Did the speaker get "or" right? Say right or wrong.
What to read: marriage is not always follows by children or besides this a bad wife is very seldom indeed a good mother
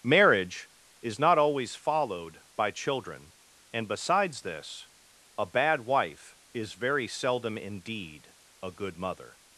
wrong